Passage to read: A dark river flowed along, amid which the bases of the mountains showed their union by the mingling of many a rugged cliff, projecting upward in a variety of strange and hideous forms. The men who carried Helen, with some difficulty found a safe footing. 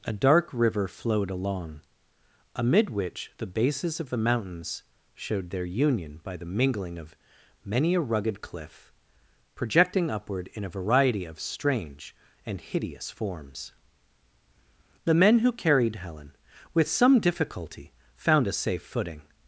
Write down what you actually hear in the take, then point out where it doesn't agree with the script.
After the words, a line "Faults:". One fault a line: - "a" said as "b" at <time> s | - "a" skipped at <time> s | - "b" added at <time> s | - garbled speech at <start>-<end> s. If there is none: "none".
A dark river flowed along, amid which the bases of the mountains showed their union by the mingling of many a rugged cliff, projecting upward in a variety of strange and hideous forms. The men who carried Helen, with some difficulty found a safe footing.
Faults:
none